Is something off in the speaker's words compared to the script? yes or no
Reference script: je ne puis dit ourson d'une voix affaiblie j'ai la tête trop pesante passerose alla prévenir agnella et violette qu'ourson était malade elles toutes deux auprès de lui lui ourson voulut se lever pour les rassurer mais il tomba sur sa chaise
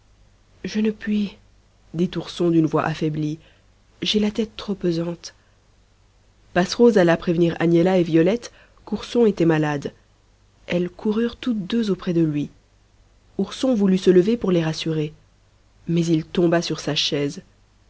yes